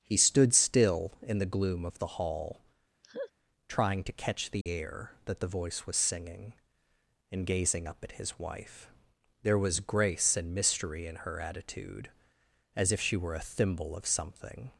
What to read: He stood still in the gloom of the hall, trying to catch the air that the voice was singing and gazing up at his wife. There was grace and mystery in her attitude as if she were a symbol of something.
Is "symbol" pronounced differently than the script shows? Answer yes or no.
yes